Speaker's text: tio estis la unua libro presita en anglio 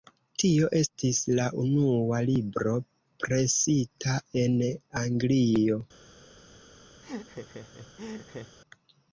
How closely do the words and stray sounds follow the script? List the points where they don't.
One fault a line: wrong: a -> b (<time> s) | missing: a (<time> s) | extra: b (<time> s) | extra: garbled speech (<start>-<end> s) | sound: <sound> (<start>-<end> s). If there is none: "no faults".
sound: laugh (7.0-8.6 s)